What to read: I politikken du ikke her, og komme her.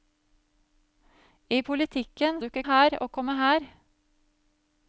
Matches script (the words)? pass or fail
pass